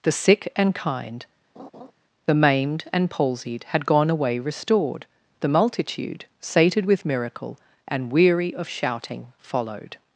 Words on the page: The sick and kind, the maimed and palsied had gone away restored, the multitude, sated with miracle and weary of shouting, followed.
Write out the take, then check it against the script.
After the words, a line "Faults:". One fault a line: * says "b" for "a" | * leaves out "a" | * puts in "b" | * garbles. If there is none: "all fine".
The sick and kind, the maimed and palsied had gone away restored, the multitude, sated with miracle and weary of shouting, followed.
Faults:
all fine